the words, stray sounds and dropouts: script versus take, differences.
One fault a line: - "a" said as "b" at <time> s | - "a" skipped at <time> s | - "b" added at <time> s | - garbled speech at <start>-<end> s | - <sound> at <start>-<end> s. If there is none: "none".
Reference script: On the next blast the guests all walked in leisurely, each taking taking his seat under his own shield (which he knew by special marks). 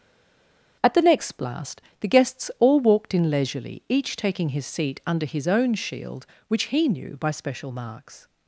- "On" said as "At" at 0.8 s
- "taking" skipped at 4.5 s